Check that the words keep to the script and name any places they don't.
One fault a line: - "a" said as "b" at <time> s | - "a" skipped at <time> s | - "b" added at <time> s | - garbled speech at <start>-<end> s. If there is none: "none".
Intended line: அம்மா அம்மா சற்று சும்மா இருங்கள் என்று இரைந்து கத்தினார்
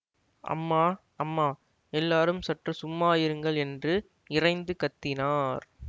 - "எல்லாரும்" added at 1.9 s